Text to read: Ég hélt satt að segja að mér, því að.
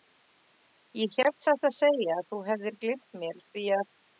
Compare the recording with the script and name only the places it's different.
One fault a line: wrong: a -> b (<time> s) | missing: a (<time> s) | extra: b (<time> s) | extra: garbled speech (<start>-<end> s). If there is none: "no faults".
extra: þú hefðir gleymt (2.3 s)